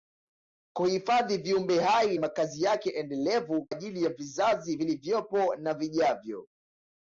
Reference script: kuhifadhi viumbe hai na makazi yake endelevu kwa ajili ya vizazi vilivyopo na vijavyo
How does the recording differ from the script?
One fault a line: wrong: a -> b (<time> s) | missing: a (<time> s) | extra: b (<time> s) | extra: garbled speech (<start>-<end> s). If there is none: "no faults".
missing: na (2.2 s)
missing: kwa (3.7 s)